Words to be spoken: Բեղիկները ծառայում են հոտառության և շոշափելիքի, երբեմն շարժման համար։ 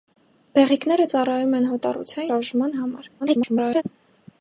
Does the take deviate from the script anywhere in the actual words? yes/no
yes